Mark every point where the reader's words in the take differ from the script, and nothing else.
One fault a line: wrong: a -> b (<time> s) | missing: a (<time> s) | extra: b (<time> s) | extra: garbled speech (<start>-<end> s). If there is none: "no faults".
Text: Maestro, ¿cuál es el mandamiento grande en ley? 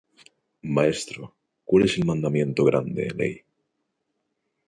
no faults